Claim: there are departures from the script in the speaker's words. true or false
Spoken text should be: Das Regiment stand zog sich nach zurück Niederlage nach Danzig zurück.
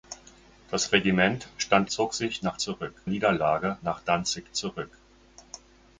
false